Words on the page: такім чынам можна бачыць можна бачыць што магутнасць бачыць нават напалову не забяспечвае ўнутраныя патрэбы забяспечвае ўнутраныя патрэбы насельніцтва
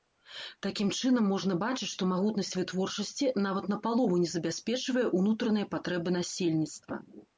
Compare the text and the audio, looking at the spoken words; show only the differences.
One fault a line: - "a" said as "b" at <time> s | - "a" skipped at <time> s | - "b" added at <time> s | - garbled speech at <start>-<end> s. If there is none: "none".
- "можна бачыць" skipped at 1.9 s
- "бачыць" said as "вытворчасці" at 2.6 s
- "забяспечвае ўнутраныя патрэбы" skipped at 6.1 s